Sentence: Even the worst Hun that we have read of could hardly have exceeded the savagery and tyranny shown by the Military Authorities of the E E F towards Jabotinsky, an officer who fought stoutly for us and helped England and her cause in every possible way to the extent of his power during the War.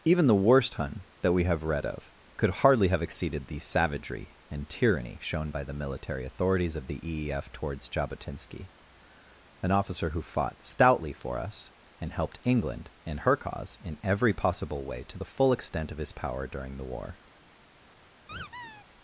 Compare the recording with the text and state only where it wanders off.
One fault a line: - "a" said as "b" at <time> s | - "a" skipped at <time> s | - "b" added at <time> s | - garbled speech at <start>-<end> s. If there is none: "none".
- "full" added at 15.3 s